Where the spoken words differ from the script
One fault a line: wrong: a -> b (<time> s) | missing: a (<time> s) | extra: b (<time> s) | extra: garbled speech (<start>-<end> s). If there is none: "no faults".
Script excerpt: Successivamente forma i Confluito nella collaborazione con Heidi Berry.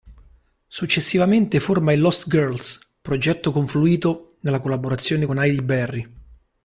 extra: Lost Girls progetto (2.0 s)